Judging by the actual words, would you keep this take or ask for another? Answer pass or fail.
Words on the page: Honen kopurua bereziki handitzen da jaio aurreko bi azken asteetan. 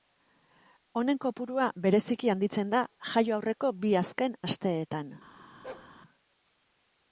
pass